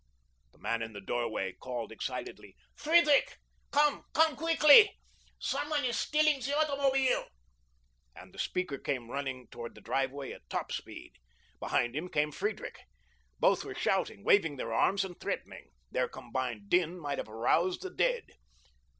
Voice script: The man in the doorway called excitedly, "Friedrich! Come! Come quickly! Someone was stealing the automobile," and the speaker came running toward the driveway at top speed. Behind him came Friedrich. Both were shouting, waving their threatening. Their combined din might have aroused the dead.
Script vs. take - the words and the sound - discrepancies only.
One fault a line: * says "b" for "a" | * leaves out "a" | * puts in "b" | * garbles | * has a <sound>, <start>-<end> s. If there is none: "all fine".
* says "is" for "was"
* puts in "arms and"